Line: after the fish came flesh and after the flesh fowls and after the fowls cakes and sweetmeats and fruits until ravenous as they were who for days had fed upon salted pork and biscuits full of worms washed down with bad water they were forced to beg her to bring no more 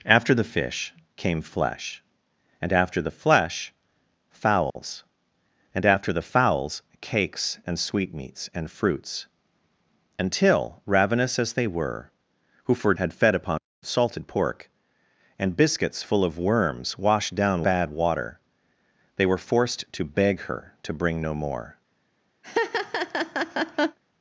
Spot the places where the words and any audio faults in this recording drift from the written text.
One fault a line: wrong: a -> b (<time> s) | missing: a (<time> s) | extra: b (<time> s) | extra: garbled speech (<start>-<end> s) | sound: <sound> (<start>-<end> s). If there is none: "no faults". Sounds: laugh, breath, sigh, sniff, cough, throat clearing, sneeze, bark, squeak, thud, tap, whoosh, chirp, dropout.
sound: dropout (4.7-4.8 s)
missing: days (12.9 s)
missing: with (17.6 s)
sound: laugh (22.4-24.0 s)